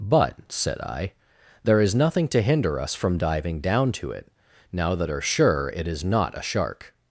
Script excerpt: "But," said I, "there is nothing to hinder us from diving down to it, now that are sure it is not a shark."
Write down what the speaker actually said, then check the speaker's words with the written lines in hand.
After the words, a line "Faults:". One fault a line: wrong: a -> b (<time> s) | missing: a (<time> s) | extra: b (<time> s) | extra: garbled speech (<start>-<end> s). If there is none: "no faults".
"But," said I, "there is nothing to hinder us from diving down to it, now that are sure it is not a shark."
Faults:
no faults